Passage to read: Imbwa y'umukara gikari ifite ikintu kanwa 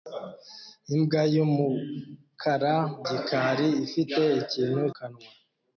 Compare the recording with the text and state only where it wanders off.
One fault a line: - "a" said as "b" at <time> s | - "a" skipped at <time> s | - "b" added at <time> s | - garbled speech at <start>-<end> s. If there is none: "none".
none